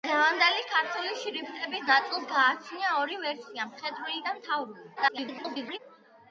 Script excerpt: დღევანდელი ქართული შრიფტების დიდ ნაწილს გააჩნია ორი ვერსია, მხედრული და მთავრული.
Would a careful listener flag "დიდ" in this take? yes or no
yes